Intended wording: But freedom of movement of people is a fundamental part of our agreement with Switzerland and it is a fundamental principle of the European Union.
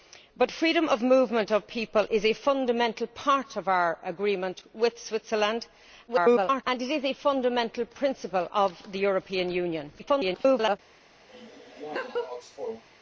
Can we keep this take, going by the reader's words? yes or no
no